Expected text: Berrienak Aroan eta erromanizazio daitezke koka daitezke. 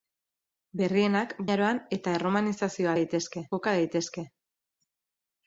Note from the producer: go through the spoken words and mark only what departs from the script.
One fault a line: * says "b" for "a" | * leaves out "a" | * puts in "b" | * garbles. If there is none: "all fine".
all fine